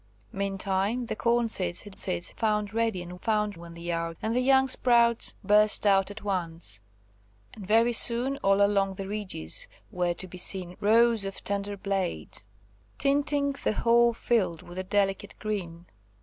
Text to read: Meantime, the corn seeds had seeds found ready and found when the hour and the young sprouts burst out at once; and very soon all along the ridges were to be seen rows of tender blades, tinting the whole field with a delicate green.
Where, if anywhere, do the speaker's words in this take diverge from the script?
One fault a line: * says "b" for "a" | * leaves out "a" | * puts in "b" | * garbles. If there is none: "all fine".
all fine